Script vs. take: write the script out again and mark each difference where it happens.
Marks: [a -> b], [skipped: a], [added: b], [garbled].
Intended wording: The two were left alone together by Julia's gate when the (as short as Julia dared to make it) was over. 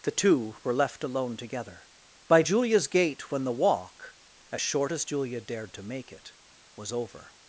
The two were left alone together by Julia's gate when the [added: walk] (as short as Julia dared to make it) was over.